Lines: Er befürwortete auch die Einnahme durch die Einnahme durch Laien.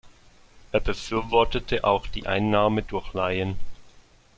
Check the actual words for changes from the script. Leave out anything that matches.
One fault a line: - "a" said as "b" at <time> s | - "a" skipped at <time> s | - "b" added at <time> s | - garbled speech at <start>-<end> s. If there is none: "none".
- "die Einnahme durch" skipped at 3.1 s